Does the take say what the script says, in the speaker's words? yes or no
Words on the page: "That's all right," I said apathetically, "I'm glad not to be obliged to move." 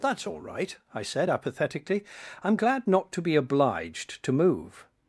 yes